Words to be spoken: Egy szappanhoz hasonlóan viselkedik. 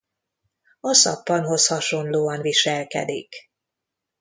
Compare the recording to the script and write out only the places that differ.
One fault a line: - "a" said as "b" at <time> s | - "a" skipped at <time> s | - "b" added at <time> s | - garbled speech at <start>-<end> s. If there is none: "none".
- "Egy" said as "A" at 0.8 s